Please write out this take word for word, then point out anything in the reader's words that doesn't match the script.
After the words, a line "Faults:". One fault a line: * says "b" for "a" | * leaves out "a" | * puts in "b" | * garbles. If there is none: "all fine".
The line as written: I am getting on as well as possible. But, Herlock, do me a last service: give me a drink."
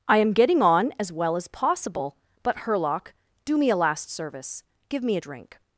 I am getting on as well as possible. But, Herlock, do me a last service: give me a drink."
Faults:
all fine